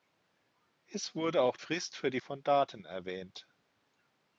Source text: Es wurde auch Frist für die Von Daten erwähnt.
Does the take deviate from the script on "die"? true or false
false